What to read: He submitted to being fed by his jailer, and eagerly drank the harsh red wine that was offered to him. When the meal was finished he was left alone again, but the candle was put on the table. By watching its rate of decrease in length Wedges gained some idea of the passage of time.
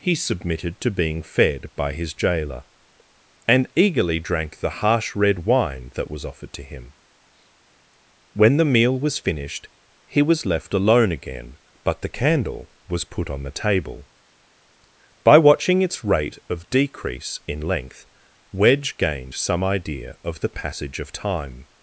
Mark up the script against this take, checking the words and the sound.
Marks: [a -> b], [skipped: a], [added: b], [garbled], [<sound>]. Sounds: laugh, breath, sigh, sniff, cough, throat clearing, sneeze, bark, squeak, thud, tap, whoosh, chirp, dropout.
He submitted to being fed by his jailer, and eagerly drank the harsh red wine that was offered to him. When the meal was finished he was left alone again, but the candle was put on the table. By watching its rate of decrease in length [Wedges -> Wedge] gained some idea of the passage of time.